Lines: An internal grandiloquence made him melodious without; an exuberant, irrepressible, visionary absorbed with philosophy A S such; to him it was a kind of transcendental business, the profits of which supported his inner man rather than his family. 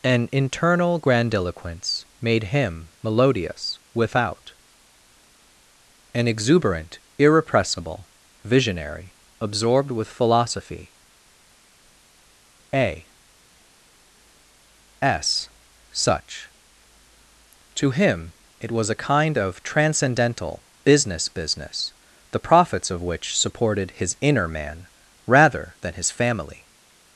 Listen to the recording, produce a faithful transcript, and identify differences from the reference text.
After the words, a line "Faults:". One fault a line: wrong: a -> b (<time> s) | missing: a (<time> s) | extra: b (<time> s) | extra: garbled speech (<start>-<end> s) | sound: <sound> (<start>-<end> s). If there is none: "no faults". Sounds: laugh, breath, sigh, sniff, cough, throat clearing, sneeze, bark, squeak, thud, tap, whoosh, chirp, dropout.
An internal grandiloquence made him melodious without; an exuberant, irrepressible, visionary absorbed with philosophy A S such; to him it was a kind of transcendental business business, the profits of which supported his inner man rather than his family.
Faults:
extra: business (21.3 s)